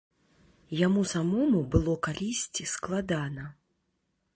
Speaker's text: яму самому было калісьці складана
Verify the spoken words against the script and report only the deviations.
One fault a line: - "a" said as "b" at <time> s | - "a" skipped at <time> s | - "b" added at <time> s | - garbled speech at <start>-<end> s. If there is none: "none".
none